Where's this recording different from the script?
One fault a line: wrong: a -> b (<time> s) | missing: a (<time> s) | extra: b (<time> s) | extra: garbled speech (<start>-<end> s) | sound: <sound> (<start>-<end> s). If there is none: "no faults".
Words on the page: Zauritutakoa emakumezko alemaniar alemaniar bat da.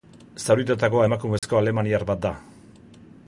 sound: dropout (1.4-1.4 s)
missing: alemaniar (2.1 s)